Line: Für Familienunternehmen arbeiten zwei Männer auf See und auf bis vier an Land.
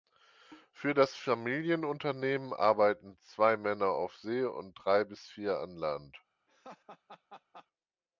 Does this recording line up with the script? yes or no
no